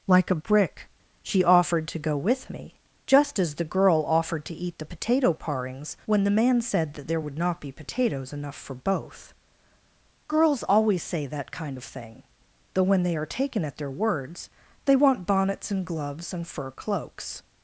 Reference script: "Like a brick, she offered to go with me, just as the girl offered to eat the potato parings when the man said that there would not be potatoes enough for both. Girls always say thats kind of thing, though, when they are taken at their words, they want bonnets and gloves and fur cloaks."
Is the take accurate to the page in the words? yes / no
no